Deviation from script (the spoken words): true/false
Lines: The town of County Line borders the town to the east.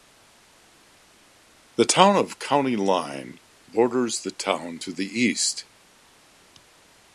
false